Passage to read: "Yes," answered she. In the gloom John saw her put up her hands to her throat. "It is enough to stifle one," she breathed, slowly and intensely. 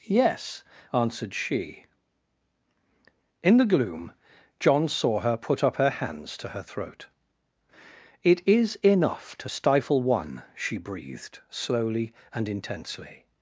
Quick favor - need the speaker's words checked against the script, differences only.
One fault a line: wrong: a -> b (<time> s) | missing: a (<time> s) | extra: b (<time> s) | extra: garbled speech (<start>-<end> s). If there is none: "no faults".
no faults